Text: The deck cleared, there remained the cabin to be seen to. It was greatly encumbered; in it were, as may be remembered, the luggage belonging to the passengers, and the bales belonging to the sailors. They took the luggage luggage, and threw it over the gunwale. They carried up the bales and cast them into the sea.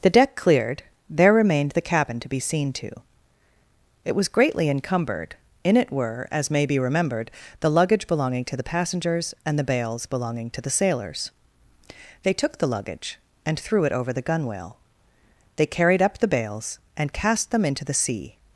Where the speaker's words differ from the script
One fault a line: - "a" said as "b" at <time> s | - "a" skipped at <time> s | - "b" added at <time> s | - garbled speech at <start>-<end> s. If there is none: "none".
- "luggage" skipped at 13.2 s